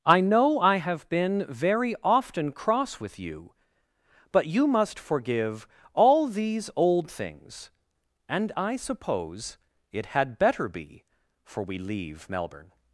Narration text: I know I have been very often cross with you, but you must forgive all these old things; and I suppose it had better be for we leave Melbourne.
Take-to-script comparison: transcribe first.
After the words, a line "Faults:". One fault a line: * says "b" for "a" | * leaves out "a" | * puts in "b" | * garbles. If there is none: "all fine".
I know I have been very often cross with you, but you must forgive all these old things; and I suppose it had better be for we leave Melbourne.
Faults:
all fine